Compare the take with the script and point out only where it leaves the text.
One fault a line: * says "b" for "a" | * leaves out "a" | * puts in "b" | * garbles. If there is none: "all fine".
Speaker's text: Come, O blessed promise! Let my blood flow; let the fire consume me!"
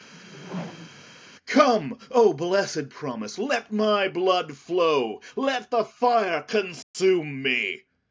all fine